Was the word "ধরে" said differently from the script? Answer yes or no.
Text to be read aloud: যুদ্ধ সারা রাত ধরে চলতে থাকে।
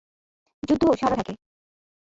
yes